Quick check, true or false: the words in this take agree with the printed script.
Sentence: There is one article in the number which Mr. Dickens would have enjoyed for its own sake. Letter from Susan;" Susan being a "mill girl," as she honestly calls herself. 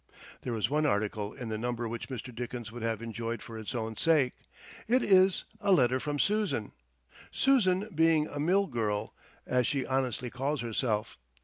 false